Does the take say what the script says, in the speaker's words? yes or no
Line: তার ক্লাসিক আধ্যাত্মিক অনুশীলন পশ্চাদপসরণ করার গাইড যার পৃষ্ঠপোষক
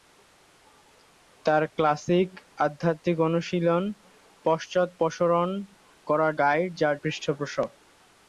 yes